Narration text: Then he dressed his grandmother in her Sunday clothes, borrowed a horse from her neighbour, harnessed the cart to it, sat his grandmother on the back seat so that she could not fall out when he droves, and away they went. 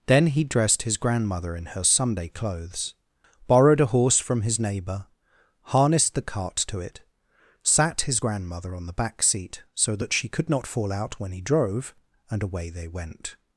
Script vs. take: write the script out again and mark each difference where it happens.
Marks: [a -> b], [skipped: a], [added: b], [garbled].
Then he dressed his grandmother in her Sunday clothes, borrowed a horse from [her -> his] neighbour, harnessed the cart to it, sat his grandmother on the back seat so that she could not fall out when he [droves, -> drove] and away they went.